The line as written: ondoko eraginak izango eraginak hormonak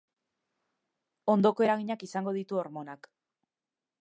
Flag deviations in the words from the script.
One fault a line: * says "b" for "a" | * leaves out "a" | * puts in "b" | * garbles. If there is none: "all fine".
* says "ditu" for "eraginak"